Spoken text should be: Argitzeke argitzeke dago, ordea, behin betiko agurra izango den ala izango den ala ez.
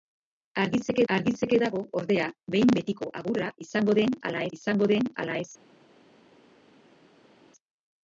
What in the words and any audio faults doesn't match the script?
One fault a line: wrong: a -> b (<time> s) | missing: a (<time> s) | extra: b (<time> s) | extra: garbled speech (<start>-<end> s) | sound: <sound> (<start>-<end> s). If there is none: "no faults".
no faults